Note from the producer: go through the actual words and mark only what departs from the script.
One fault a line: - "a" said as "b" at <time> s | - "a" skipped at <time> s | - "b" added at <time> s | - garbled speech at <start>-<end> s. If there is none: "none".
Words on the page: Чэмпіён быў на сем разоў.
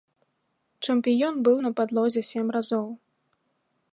- "падлозе" added at 1.8 s